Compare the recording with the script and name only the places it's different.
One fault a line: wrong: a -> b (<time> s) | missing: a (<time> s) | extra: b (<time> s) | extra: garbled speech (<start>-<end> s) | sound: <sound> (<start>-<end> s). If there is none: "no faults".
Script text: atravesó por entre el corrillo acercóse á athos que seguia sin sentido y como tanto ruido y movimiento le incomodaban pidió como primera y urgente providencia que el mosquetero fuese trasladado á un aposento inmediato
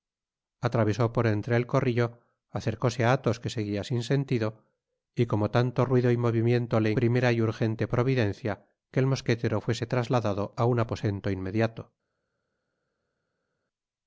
missing: incomodaban pidió como (6.9 s)